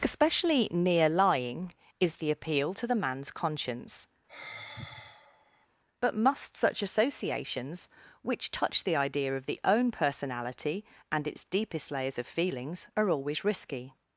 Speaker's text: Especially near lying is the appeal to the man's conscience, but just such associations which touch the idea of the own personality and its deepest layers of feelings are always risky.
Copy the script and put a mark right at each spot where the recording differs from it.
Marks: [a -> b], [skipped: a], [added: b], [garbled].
Especially near lying is the appeal to the man's conscience, but [just -> must] such associations which touch the idea of the own personality and its deepest layers of feelings are always risky.